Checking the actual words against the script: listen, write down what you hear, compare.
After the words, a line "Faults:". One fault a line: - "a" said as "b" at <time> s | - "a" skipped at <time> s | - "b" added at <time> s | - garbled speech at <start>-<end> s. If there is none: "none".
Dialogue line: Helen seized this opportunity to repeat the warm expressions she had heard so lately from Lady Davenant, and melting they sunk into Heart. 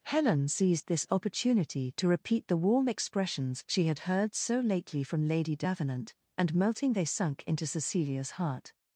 Helen seized this opportunity to repeat the warm expressions she had heard so lately from Lady Davenant, and melting they sunk into Cecilia's heart.
Faults:
- "Cecilia's" added at 7.7 s